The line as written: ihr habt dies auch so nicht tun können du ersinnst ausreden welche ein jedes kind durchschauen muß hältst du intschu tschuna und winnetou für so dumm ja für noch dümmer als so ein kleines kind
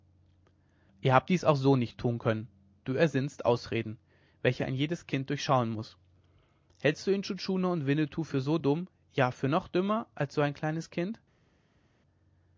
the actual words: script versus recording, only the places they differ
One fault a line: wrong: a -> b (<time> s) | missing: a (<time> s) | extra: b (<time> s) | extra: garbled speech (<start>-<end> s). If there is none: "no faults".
no faults